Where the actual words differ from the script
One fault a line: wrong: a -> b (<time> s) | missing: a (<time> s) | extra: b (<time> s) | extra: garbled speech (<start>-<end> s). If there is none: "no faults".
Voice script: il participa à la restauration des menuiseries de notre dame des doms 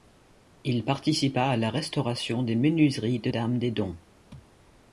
missing: notre (3.3 s)